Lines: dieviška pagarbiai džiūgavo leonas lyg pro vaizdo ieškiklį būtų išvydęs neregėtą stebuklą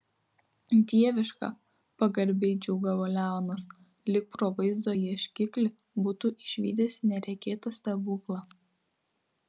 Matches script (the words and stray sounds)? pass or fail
pass